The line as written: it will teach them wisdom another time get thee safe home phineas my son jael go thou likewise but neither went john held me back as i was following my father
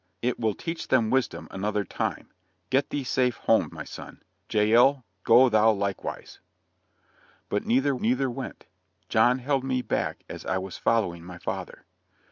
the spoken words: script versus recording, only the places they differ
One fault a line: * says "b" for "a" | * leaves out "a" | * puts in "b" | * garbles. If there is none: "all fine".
* leaves out "phineas"
* puts in "neither"